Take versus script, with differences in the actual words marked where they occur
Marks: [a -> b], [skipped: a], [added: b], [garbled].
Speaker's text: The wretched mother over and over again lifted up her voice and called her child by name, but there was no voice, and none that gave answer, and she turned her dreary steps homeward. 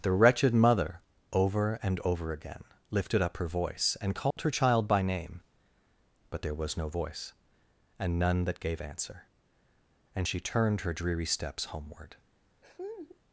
The wretched mother over and over again lifted up her voice and called her child by name, but there was no voice, and none that gave answer, and she turned her dreary steps homeward.